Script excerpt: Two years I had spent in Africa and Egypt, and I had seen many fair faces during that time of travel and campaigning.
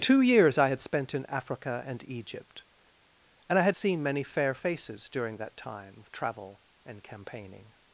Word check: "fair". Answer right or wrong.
right